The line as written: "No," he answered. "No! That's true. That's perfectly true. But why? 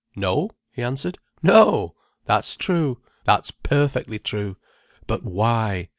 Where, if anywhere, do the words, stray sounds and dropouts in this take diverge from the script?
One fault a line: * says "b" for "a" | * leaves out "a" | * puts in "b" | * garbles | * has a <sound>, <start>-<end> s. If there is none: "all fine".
all fine